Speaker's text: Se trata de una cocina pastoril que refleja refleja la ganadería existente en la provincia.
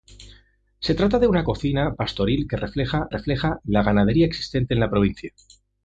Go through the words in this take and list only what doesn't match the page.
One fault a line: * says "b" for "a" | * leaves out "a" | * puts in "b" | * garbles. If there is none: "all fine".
all fine